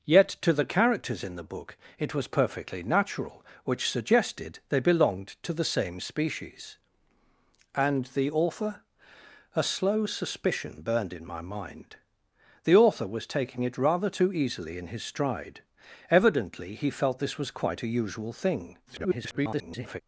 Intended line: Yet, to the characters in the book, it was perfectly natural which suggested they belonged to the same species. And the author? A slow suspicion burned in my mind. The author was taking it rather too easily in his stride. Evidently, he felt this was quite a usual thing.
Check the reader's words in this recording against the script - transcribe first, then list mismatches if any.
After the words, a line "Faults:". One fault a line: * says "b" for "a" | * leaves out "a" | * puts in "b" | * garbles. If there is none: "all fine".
Yet, to the characters in the book, it was perfectly natural which suggested they belonged to the same species. And the author? A slow suspicion burned in my mind. The author was taking it rather too easily in his stride. Evidently, he felt this was quite a usual thing. [garbled]
Faults:
* garbles